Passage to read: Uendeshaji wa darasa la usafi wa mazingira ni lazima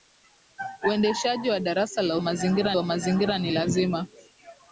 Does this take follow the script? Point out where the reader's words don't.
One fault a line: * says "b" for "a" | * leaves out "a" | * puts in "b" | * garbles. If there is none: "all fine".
* says "mazingira" for "usafi"